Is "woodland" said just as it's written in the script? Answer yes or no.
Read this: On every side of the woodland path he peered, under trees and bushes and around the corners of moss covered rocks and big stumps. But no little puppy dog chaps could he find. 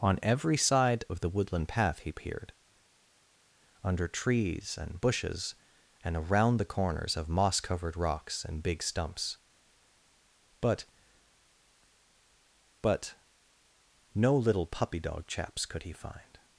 yes